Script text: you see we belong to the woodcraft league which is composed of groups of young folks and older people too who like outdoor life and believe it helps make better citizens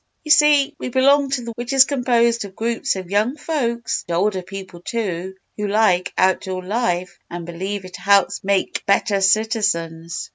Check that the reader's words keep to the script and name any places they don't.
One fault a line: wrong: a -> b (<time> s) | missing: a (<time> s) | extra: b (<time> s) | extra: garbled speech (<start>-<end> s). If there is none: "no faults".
missing: woodcraft league (1.5 s)
missing: and (4.1 s)